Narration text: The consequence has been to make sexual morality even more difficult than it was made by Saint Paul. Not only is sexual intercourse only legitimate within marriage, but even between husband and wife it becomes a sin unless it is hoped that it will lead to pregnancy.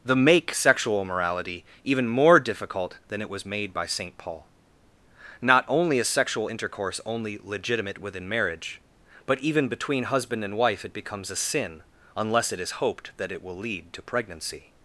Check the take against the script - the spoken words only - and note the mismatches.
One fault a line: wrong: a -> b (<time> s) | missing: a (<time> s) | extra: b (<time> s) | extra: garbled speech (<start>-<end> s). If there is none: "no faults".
missing: consequence has been to (0.1 s)